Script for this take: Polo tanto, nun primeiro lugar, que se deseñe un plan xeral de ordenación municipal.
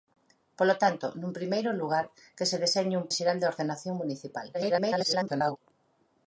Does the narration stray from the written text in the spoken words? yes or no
yes